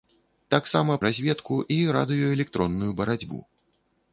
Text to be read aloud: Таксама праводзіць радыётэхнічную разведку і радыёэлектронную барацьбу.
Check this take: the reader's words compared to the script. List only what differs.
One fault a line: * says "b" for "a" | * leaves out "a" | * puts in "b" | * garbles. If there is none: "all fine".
* leaves out "праводзіць радыётэхнічную"